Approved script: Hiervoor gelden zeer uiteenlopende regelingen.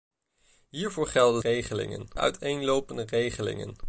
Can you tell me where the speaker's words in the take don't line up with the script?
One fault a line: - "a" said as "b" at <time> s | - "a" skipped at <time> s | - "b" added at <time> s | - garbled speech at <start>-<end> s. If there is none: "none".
- "zeer" said as "regelingen" at 1.4 s